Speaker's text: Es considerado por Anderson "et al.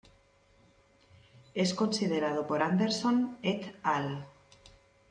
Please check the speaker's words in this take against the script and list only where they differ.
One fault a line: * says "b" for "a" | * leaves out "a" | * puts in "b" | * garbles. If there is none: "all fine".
all fine